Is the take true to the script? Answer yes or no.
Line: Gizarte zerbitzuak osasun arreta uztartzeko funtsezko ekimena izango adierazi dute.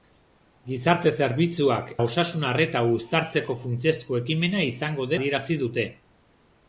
yes